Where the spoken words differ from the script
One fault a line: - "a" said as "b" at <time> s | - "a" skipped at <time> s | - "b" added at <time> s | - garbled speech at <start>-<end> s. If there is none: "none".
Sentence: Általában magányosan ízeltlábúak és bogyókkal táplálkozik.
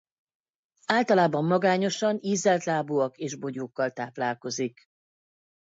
none